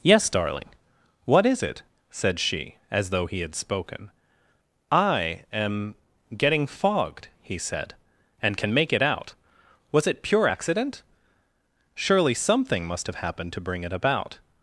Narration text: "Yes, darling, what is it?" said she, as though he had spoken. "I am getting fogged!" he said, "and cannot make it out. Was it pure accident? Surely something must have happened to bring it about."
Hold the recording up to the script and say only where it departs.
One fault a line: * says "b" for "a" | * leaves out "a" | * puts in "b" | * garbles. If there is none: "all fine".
* says "can" for "cannot"